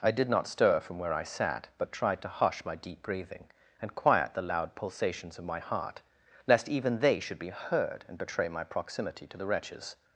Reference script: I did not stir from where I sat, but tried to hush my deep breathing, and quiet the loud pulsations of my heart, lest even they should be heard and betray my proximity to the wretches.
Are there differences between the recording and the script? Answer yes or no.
no